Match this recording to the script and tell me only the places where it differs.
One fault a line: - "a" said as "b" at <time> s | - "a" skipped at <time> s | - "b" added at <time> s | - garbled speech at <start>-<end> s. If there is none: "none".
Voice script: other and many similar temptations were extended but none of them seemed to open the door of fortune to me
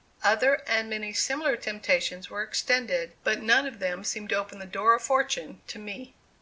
none